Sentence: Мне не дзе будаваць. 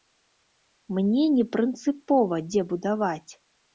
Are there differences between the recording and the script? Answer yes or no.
yes